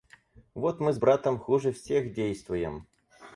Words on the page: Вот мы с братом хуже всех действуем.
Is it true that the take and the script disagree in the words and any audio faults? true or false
false